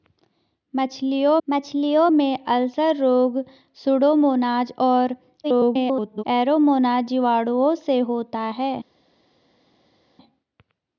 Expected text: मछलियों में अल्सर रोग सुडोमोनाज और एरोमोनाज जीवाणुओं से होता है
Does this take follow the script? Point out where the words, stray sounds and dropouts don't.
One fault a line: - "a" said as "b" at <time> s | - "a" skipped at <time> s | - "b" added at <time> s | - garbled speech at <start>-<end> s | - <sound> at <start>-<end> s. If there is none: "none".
- "मछलियों" added at 1.5 s
- garbled speech at 5.4-6.2 s